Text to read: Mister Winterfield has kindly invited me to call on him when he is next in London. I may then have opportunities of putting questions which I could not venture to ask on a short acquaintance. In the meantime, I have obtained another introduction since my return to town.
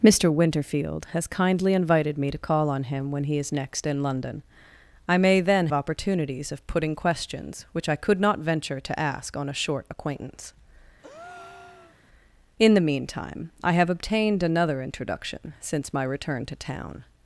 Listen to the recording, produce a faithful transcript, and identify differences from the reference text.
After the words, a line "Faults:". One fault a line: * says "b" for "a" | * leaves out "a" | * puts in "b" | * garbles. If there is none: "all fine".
Mister Winterfield has kindly invited me to call on him when he is next in London. I may then opportunities of putting questions which I could not venture to ask on a short acquaintance. In the meantime, I have obtained another introduction since my return to town.
Faults:
* leaves out "have"